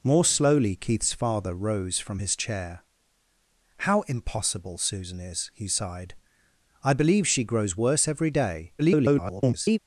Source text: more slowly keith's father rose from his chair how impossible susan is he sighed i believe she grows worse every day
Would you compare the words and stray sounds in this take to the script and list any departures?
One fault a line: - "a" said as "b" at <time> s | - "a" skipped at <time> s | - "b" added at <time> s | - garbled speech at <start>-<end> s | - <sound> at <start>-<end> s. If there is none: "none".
- garbled speech at 8.8-9.8 s